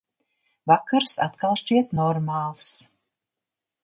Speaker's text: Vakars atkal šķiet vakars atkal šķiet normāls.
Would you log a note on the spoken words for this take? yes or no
yes